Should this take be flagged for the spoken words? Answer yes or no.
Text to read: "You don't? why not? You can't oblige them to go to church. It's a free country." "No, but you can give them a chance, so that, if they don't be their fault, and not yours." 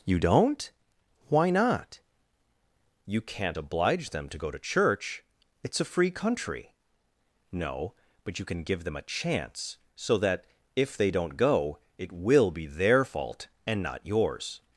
yes